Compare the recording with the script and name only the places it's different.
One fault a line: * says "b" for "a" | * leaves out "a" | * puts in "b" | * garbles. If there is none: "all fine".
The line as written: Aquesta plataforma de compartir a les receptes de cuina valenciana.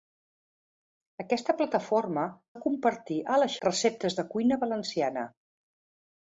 all fine